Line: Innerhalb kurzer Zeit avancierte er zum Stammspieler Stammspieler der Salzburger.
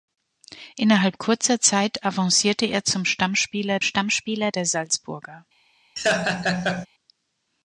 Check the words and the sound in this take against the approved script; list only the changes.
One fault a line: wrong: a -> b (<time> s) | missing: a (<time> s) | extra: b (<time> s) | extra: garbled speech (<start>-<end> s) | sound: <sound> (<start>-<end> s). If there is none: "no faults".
sound: laugh (6.0-6.9 s)